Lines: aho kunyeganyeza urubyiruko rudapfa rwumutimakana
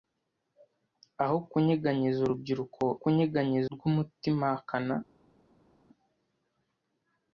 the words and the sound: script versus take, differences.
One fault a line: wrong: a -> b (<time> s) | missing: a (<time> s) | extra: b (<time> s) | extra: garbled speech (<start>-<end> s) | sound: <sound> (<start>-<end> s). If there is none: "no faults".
wrong: rudapfa -> kunyeganyeza (3.0 s)